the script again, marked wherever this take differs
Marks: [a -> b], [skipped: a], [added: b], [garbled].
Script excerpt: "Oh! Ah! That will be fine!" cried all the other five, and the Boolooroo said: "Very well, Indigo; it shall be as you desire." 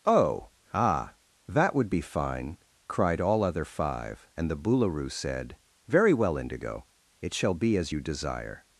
"Oh! Ah! That [will -> would] be fine!" cried all [skipped: the] other five, and the Boolooroo said: "Very well, Indigo; it shall be as you desire."